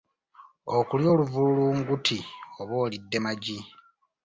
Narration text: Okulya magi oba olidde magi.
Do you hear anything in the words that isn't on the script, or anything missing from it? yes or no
yes